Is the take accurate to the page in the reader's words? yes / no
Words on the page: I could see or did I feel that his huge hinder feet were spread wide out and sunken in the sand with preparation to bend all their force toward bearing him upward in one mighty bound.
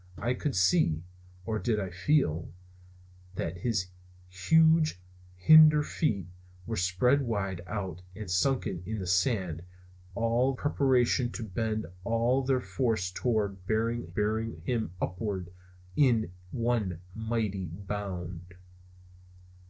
no